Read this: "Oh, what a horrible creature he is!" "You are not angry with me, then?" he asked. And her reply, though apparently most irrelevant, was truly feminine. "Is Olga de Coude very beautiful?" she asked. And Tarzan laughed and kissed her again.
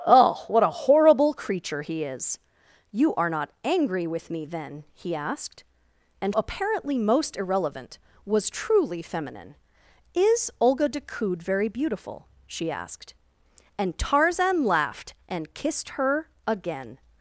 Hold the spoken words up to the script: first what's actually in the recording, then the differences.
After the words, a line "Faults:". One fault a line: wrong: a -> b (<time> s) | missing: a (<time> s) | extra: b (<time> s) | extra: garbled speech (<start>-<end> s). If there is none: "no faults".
"Oh, what a horrible creature he is!" "You are not angry with me, then?" he asked. And apparently most irrelevant, was truly feminine. "Is Olga de Coude very beautiful?" she asked. And Tarzan laughed and kissed her again.
Faults:
missing: her reply though (6.3 s)